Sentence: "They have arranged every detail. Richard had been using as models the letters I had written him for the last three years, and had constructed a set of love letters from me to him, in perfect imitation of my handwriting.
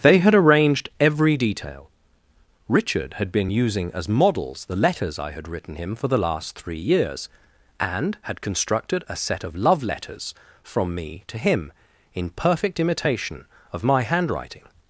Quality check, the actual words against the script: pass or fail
fail